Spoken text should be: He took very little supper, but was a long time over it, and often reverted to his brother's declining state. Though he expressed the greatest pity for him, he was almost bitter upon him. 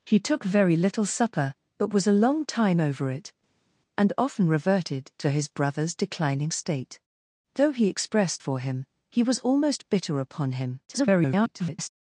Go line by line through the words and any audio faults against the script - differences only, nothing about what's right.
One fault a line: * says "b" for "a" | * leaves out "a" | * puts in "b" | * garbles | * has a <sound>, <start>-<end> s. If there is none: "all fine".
* leaves out "the greatest pity"
* garbles